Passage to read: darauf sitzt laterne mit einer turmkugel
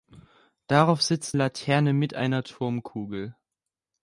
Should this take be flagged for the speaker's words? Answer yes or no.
no